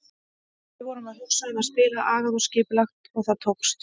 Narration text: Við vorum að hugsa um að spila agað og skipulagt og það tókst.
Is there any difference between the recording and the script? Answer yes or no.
no